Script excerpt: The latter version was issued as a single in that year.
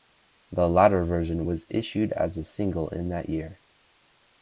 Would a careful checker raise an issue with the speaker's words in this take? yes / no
no